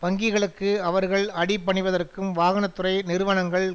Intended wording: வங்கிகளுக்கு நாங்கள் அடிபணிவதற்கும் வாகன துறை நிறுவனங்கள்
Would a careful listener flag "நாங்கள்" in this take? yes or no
yes